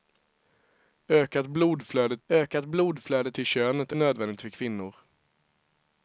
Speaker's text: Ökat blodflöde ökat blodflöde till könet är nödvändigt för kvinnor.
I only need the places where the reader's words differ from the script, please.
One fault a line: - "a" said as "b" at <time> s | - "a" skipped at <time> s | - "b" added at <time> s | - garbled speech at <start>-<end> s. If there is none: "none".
none